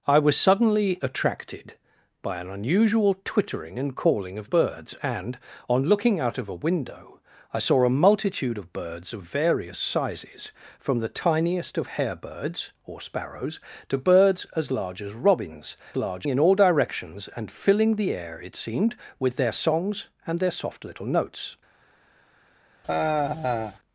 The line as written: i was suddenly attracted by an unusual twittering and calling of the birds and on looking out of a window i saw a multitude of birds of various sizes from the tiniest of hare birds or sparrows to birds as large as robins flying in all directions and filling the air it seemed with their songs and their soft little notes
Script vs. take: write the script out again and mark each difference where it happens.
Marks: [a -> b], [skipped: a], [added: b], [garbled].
i was suddenly attracted by an unusual twittering and calling of [skipped: the] birds and on looking out of a window i saw a multitude of birds of various sizes from the tiniest of hare birds or sparrows to birds as large as robins [flying -> large] in all directions and filling the air it seemed with their songs and their soft little notes